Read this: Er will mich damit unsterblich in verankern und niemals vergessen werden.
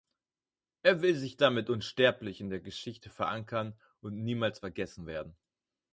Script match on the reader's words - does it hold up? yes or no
no